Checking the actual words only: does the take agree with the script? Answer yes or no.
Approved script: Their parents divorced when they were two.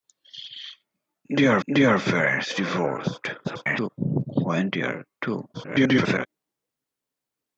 no